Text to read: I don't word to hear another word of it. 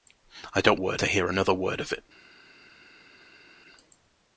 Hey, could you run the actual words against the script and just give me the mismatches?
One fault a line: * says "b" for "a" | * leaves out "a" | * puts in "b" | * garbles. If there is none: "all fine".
all fine